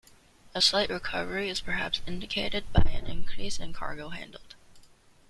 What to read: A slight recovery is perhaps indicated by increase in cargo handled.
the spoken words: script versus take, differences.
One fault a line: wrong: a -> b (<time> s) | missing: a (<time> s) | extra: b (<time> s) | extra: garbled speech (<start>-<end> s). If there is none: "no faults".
extra: an (2.9 s)